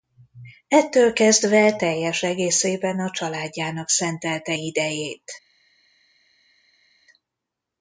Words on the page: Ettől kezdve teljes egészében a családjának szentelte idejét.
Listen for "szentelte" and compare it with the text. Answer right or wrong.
right